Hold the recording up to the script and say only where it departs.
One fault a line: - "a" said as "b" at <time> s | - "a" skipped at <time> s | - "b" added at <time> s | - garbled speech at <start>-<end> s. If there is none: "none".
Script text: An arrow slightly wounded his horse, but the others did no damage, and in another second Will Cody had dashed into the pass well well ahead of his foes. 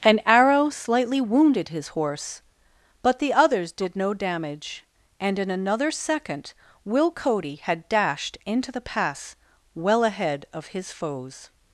- "well" skipped at 10.0 s